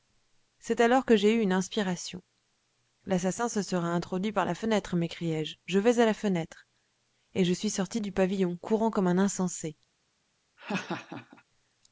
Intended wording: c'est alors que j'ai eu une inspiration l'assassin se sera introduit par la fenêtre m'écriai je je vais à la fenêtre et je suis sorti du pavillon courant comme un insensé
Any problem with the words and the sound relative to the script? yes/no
yes